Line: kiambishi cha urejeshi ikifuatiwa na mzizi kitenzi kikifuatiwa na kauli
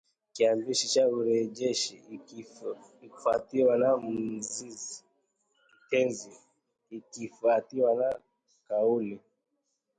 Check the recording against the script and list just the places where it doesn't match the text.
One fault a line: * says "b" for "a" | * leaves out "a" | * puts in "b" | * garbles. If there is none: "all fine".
all fine